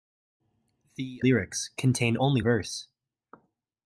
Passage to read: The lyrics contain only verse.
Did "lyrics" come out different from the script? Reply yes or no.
no